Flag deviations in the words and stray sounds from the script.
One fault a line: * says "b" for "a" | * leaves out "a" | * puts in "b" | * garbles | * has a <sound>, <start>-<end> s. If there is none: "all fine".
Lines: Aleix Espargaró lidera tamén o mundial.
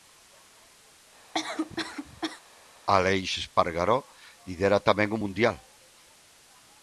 * has a cough, 1.3-2.4 s